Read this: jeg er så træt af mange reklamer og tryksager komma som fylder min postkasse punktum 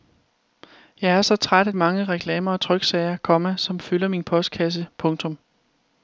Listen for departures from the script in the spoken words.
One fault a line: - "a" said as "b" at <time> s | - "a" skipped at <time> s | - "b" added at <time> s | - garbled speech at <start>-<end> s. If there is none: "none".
none